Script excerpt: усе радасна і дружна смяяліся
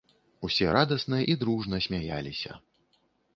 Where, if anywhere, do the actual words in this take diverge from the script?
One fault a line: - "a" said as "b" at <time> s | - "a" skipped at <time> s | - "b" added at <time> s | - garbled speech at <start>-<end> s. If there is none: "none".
none